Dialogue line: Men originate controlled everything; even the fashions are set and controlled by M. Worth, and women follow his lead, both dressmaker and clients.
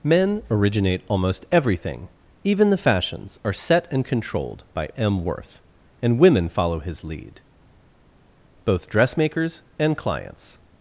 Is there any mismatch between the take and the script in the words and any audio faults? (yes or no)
yes